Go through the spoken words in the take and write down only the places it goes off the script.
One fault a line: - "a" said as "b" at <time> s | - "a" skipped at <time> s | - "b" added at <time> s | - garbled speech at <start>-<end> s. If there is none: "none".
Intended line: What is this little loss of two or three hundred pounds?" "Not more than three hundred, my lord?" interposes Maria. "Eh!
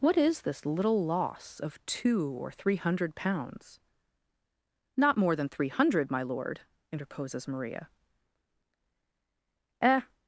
none